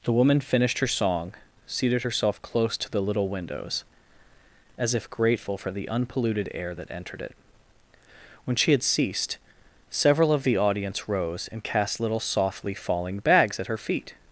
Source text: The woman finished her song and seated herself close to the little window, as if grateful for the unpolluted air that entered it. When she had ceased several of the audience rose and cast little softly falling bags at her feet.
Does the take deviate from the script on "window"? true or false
true